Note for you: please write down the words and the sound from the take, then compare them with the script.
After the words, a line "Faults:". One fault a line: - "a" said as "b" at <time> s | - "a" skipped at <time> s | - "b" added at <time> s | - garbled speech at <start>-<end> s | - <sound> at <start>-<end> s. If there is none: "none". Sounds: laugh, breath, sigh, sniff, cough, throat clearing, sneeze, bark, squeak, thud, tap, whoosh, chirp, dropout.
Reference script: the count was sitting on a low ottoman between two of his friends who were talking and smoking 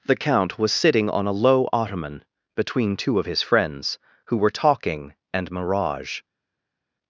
the count was sitting on a low ottoman between two of his friends who were talking and mirage
Faults:
- "smoking" said as "mirage" at 5.5 s